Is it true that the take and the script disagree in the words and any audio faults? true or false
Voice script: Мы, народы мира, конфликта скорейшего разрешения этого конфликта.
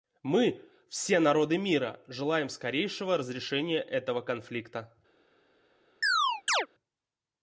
true